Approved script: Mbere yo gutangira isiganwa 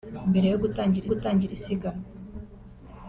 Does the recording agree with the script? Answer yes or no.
no